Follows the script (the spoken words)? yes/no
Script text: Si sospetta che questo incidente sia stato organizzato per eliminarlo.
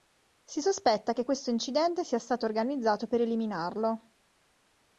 yes